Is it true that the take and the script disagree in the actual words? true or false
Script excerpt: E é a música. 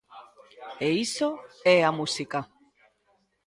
true